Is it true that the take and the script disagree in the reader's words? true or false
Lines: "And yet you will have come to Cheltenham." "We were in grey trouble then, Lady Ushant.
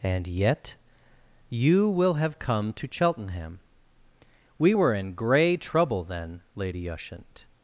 false